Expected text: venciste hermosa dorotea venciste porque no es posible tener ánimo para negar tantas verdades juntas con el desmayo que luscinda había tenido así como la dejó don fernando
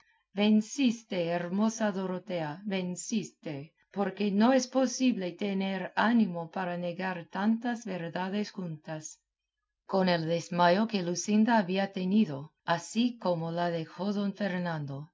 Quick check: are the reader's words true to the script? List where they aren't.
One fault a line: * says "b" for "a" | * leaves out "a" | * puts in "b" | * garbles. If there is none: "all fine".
all fine